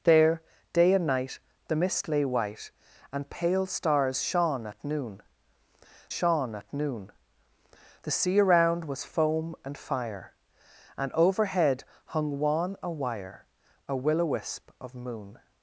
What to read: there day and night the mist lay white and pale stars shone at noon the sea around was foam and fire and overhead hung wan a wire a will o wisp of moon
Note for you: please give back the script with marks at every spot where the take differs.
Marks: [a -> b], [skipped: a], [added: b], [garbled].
there day and night the mist lay white and pale stars shone at noon [added: shone at noon] the sea around was foam and fire and overhead hung wan a wire a will o wisp of moon